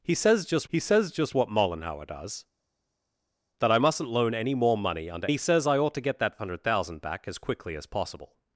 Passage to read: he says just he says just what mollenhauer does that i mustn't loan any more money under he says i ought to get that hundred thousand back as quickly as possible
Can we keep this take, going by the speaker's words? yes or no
yes